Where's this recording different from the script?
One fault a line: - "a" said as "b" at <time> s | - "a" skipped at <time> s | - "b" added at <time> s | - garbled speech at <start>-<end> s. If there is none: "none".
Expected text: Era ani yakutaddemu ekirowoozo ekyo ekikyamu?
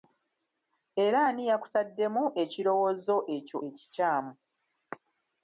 none